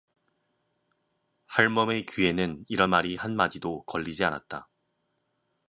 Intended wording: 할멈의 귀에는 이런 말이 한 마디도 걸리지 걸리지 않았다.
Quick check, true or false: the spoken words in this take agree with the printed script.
false